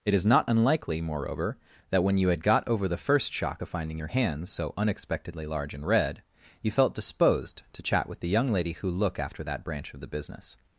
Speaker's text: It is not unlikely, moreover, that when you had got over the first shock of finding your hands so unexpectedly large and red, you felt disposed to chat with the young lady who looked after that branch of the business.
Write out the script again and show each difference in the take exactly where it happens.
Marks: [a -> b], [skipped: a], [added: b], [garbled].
It is not unlikely, moreover, that when you had got over the first shock of finding your hands so unexpectedly large and red, you felt disposed to chat with the young lady who [looked -> look] after that branch of the business.